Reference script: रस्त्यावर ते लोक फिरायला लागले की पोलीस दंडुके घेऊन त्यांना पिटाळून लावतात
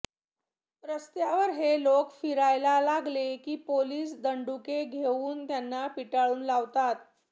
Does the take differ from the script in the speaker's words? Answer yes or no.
yes